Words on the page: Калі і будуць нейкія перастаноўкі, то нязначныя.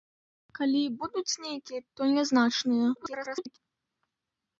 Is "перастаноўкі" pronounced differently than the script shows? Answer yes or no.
yes